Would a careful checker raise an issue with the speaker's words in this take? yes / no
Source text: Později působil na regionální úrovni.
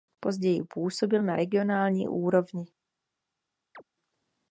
no